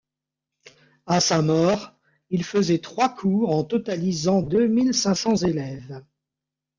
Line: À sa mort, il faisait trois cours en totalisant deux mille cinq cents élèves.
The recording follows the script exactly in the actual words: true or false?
true